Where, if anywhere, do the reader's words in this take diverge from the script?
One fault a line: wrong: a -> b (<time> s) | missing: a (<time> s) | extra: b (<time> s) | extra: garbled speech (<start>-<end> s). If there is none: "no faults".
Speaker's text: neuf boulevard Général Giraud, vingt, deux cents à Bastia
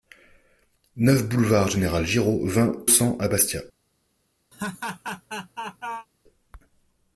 missing: deux (2.9 s)